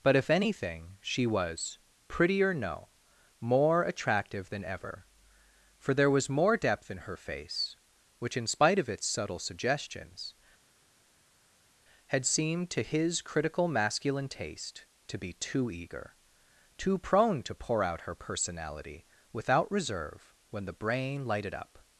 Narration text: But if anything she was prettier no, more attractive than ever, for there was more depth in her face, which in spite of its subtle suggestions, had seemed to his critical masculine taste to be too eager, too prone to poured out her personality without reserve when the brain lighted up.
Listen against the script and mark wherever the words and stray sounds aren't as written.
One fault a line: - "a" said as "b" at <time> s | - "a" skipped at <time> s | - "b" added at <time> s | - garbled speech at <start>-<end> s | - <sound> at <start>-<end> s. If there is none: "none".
- "poured" said as "pour" at 17.5 s